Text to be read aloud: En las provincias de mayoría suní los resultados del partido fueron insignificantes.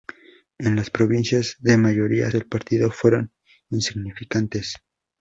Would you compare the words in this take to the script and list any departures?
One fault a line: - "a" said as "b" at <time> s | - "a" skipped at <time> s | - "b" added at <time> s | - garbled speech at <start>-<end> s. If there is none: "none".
- "suní los resultados" skipped at 2.3 s